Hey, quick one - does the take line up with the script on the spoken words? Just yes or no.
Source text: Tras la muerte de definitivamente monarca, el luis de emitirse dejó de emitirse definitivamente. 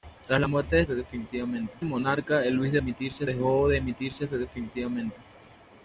yes